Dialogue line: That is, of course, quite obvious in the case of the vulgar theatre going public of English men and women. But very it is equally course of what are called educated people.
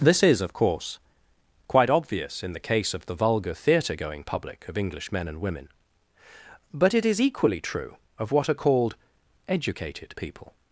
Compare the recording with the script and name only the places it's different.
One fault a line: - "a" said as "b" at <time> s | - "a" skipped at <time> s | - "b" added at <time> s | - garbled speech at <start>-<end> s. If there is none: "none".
- "That" said as "This" at 0.0 s
- "very" skipped at 6.9 s
- "course" said as "true" at 7.6 s